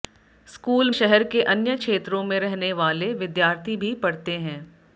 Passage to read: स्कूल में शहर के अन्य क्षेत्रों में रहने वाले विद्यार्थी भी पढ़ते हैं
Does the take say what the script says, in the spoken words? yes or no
no